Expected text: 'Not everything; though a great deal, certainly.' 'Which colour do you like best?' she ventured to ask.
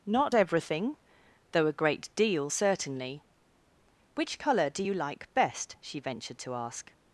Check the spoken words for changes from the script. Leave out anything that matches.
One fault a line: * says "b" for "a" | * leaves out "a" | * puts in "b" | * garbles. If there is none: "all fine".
all fine